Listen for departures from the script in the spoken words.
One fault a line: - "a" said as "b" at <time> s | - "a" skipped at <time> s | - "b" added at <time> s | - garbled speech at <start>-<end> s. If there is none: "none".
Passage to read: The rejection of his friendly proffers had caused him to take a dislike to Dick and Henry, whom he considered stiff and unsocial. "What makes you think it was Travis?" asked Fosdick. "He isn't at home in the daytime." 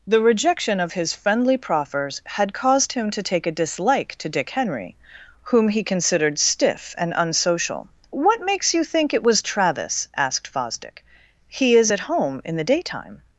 - "and" skipped at 4.5 s
- "isn't" said as "is" at 11.8 s